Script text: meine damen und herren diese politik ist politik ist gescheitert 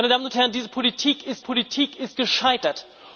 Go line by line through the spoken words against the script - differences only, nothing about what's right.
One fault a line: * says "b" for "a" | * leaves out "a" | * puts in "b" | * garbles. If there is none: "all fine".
all fine